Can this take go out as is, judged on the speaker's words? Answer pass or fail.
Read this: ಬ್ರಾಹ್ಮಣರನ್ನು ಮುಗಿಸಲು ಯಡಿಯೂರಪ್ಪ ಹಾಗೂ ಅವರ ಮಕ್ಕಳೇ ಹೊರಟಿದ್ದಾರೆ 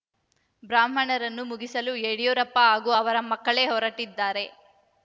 pass